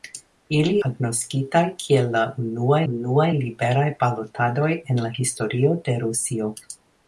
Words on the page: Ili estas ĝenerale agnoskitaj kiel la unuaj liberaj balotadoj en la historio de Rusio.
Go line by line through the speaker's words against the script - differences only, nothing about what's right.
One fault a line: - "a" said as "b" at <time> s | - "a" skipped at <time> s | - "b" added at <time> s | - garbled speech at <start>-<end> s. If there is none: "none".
- "estas ĝenerale" skipped at 0.7 s
- "unuaj" added at 2.9 s